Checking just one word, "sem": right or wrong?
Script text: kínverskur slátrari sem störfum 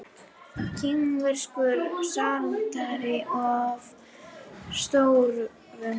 wrong